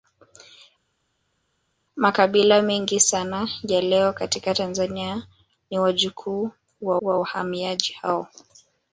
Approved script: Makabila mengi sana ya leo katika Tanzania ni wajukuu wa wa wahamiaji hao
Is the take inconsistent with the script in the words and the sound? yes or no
no